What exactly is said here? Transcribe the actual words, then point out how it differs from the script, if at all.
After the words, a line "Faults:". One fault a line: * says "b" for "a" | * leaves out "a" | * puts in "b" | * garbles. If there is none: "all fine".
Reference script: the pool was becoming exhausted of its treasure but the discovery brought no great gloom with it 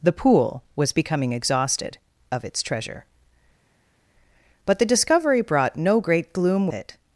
the pool was becoming exhausted of its treasure but the discovery brought no great gloom it
Faults:
* leaves out "with"